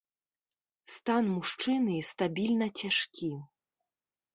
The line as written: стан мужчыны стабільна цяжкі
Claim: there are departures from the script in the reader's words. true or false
false